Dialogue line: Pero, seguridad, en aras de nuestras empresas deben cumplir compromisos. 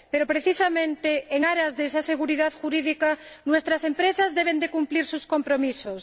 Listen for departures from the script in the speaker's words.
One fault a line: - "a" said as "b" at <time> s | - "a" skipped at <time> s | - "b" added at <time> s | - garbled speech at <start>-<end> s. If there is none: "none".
- "seguridad" said as "precisamente" at 0.2 s
- "esa seguridad jurídica" added at 1.9 s
- "sus" added at 5.1 s